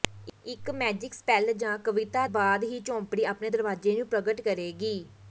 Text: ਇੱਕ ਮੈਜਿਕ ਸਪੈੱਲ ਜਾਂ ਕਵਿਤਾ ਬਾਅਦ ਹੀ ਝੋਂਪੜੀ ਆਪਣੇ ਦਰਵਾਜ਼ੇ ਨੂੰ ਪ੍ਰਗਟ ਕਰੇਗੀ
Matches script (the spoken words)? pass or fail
pass